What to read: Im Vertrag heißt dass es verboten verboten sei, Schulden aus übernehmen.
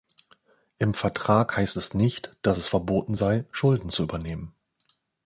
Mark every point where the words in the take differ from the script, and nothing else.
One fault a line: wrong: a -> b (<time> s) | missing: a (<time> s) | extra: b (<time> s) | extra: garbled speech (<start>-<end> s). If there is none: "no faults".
extra: es nicht (1.7 s)
missing: verboten (3.1 s)
wrong: aus -> zu (3.9 s)